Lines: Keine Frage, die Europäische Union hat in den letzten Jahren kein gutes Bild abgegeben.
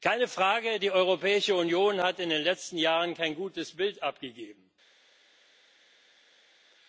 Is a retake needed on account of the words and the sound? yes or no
no